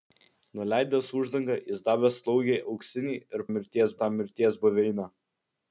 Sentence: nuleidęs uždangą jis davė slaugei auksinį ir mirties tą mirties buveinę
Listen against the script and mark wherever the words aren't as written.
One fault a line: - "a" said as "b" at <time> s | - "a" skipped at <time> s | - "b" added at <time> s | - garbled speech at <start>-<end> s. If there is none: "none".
none